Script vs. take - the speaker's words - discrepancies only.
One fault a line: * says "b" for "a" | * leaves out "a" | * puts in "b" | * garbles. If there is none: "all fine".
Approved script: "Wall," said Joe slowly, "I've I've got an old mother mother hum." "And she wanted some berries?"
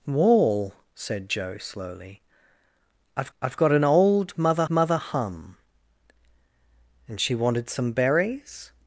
all fine